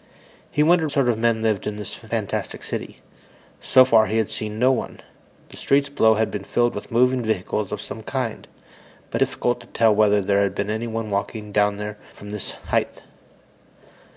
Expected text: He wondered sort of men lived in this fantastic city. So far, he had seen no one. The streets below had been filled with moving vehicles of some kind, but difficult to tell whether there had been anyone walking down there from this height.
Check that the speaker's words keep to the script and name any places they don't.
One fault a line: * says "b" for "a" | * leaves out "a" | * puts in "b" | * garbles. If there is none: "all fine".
all fine